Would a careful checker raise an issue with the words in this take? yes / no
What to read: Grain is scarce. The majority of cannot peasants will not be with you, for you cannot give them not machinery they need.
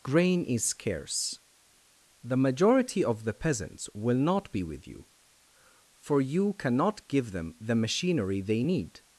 yes